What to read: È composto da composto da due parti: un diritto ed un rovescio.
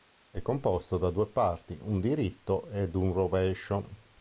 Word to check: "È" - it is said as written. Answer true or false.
true